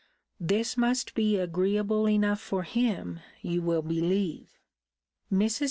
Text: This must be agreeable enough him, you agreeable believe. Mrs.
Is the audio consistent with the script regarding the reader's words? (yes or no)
no